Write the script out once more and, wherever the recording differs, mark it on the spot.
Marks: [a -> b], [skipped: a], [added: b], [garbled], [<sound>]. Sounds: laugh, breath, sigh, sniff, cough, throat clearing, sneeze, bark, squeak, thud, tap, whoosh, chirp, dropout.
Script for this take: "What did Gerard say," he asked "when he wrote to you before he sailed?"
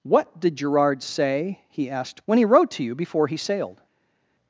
"What did Gerard say," he asked "when he wrote to you before he sailed?"